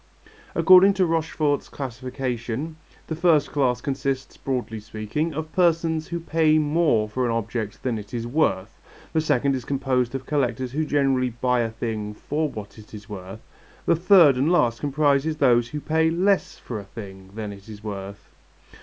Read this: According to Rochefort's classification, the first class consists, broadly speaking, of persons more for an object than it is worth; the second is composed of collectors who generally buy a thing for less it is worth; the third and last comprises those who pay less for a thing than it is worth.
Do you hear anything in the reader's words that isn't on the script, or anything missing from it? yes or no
yes